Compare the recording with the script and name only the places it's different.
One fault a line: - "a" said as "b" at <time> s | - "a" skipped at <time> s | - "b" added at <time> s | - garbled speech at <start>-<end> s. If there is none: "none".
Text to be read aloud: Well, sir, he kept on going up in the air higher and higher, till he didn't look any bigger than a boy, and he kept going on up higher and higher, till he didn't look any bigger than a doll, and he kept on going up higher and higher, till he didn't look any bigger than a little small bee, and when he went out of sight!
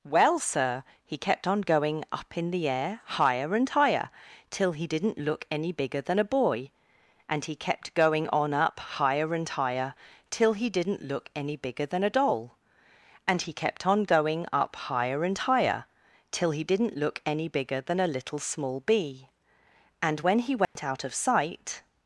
none